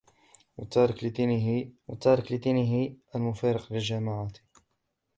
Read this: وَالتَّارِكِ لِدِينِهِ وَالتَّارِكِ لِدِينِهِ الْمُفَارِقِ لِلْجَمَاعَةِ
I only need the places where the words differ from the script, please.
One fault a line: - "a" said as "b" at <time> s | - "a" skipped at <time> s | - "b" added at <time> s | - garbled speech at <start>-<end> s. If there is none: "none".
none